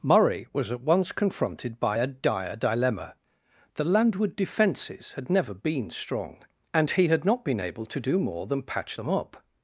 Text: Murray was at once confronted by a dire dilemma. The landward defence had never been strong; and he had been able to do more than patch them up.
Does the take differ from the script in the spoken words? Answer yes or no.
yes